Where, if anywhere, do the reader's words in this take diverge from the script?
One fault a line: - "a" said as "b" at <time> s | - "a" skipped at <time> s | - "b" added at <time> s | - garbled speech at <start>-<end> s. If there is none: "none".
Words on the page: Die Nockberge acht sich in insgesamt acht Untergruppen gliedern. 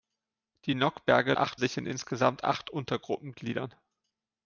none